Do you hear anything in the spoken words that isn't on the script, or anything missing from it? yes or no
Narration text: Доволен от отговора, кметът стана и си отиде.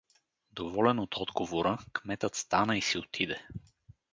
no